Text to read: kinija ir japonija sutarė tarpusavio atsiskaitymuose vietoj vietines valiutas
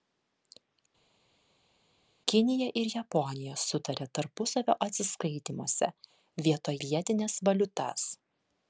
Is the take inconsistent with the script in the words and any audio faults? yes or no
no